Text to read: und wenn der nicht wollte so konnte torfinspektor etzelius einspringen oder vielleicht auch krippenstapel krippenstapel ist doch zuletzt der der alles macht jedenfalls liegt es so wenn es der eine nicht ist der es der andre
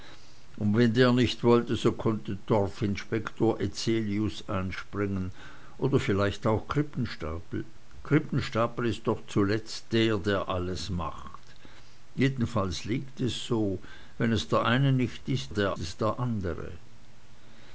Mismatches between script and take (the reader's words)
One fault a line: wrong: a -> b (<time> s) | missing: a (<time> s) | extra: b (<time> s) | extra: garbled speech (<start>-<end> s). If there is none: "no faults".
no faults